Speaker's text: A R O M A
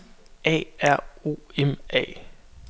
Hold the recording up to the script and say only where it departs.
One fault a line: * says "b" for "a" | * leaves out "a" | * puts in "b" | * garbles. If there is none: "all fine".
all fine